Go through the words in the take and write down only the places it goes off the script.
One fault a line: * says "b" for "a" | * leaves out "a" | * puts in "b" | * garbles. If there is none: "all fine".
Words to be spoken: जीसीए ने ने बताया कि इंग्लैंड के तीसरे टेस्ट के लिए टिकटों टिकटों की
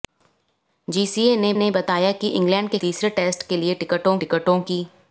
all fine